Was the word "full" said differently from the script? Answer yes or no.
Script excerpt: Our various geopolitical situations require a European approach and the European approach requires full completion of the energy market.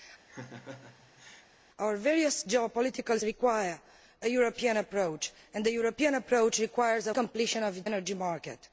yes